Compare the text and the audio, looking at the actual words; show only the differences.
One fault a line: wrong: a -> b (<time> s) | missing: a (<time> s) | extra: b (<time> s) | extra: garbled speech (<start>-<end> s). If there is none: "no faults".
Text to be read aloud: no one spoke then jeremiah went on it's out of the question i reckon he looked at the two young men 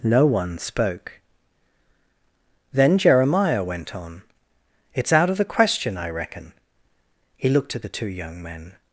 no faults